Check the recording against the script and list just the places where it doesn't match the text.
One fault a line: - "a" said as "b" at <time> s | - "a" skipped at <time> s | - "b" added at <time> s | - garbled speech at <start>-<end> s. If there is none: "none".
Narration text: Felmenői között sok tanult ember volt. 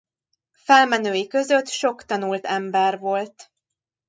none